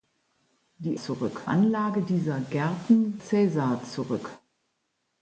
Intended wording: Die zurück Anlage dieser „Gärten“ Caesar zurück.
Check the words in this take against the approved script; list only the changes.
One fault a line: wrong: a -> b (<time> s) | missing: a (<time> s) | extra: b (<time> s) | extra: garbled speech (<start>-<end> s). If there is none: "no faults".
no faults